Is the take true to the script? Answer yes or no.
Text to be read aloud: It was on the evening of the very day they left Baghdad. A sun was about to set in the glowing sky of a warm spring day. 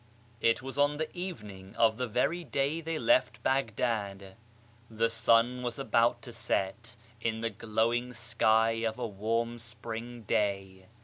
no